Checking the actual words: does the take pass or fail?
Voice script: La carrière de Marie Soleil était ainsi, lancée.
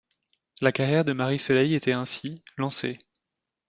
pass